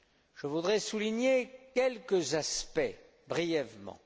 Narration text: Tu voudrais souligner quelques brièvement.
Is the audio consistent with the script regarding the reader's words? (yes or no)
no